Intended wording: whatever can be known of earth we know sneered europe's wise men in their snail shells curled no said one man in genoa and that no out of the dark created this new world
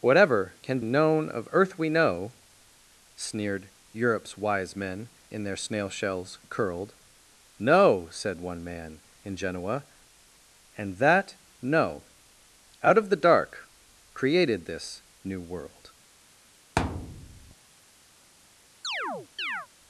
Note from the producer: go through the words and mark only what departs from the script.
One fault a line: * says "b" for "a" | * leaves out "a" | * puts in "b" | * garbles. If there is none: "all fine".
* leaves out "be"